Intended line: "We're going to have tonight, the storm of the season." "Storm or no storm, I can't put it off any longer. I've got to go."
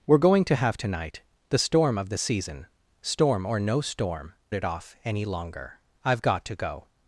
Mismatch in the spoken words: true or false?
true